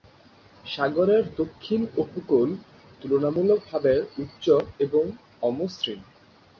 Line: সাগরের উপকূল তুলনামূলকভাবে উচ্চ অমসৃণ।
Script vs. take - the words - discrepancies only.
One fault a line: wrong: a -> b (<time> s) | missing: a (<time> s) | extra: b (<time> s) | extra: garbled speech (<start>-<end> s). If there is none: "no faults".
extra: দক্ষিণ (1.4 s)
extra: এবং (4.8 s)